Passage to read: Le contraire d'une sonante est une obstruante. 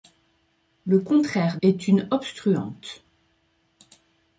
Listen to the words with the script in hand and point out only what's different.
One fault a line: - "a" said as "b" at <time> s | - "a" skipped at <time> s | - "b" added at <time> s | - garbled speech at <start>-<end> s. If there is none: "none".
- "d'une sonante" skipped at 1.6 s